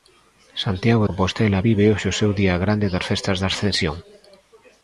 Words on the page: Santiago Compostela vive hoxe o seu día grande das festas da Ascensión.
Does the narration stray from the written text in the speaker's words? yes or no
no